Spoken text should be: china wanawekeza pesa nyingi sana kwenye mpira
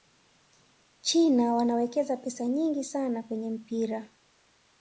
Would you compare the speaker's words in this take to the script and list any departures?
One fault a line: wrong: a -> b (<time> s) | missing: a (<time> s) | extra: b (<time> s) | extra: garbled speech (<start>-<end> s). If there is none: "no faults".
no faults